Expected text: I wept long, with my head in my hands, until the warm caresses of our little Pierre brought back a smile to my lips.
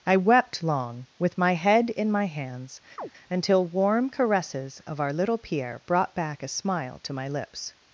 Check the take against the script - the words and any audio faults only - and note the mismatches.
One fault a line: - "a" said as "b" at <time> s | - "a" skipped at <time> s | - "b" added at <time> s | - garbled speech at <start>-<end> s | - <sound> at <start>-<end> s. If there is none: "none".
- chirp at 3.0-3.1 s
- "the" skipped at 3.7 s